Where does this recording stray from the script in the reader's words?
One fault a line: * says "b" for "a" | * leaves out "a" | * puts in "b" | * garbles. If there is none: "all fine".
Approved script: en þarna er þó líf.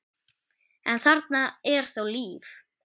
all fine